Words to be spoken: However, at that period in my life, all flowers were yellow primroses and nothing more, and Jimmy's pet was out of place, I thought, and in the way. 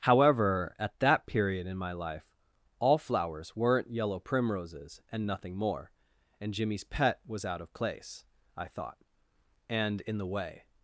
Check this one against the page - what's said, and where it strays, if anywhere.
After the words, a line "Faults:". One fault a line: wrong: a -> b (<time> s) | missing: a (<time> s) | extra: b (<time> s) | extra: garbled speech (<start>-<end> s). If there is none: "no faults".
However, at that period in my life, all flowers weren't yellow primroses and nothing more, and Jimmy's pet was out of place, I thought, and in the way.
Faults:
wrong: were -> weren't (3.5 s)